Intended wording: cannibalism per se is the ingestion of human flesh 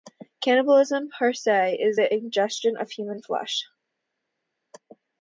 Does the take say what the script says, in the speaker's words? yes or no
yes